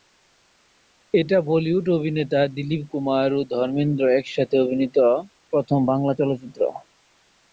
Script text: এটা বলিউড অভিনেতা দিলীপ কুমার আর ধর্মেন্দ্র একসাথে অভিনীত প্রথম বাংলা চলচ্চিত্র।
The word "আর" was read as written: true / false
false